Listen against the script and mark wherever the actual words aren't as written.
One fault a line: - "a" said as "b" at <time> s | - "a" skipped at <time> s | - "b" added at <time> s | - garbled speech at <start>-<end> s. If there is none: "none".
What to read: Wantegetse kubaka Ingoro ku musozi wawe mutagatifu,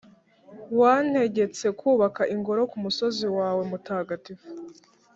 none